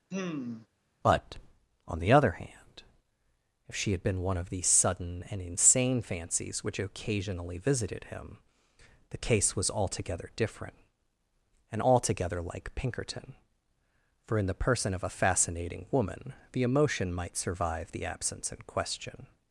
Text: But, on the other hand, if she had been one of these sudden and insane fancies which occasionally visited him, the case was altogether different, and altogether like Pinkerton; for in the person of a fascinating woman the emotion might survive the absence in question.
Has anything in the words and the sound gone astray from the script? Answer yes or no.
yes